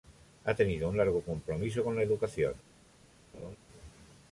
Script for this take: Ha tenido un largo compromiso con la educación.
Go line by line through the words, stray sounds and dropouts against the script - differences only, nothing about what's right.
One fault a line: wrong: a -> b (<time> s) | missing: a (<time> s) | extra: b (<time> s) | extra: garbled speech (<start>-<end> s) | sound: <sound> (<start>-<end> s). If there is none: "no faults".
sound: laugh (3.3-3.6 s)